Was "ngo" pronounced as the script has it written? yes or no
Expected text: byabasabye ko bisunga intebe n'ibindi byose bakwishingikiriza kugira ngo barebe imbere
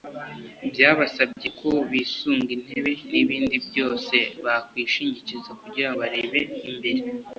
no